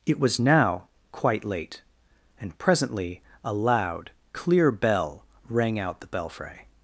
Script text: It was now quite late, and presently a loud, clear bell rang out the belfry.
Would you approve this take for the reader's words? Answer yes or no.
yes